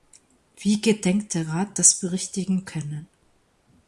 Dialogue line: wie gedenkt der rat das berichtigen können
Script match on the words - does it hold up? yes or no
yes